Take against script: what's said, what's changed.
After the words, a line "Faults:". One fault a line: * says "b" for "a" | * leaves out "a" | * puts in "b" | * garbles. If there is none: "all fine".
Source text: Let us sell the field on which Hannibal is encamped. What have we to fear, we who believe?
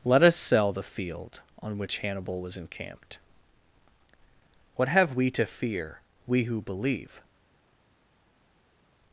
Let us sell the field on which Hannibal was encamped. What have we to fear, we who believe?
Faults:
* says "was" for "is"